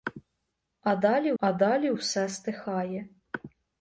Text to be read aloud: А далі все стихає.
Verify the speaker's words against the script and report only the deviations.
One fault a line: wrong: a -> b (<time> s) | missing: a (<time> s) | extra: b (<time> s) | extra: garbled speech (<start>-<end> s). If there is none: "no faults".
extra: а далі (1.4 s)